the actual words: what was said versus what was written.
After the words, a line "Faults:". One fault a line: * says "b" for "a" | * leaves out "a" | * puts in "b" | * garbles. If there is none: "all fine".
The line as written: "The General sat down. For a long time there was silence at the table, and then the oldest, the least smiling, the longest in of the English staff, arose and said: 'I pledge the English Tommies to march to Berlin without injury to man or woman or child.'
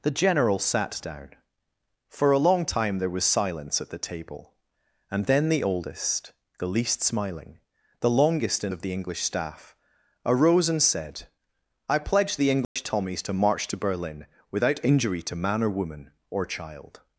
"The General sat down. For a long time there was silence at the table, and then the oldest, the least smiling, the longest in of the English staff, arose and said: 'I pledge the English Tommies to march to Berlin without injury to man or woman or child.'
Faults:
all fine